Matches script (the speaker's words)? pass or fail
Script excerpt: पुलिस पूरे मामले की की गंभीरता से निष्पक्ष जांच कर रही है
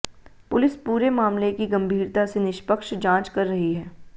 fail